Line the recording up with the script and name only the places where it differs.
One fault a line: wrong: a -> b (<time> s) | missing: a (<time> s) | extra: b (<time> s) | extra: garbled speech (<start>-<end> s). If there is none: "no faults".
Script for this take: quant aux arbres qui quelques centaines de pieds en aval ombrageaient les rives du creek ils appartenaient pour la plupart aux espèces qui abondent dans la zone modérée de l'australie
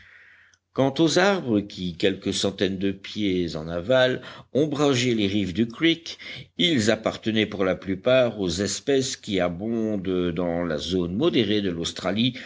no faults